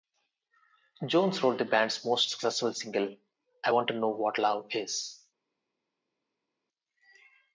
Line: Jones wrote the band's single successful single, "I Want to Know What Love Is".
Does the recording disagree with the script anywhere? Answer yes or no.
yes